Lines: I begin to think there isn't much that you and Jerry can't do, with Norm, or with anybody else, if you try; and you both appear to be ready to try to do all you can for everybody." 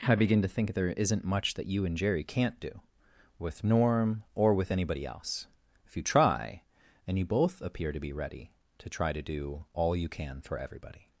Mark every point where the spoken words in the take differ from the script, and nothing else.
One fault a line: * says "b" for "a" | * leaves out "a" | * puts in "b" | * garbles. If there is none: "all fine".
all fine